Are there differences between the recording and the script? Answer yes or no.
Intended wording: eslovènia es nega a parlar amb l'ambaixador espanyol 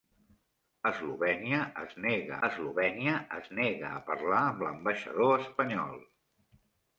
yes